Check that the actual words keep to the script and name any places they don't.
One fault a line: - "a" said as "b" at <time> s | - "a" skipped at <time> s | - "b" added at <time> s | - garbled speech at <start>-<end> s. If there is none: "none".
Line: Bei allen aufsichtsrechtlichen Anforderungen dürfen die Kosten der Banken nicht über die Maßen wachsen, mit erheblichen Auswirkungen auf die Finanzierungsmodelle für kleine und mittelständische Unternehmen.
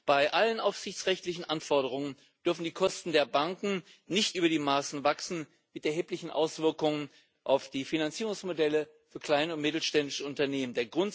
none